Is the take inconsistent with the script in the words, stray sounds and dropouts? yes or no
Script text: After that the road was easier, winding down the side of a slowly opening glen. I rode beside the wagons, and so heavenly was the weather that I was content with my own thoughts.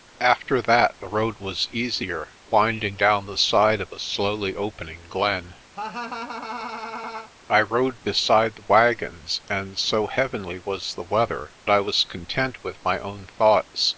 yes